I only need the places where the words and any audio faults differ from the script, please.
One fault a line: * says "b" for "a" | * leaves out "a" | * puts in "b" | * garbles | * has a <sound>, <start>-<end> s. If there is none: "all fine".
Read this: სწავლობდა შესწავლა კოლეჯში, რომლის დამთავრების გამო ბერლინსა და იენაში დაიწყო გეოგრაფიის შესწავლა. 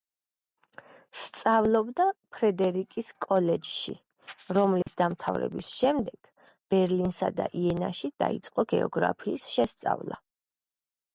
* says "ფრედერიკის" for "შესწავლა"
* has a dropout, 4.8-4.9 s
* says "შემდეგ" for "გამო"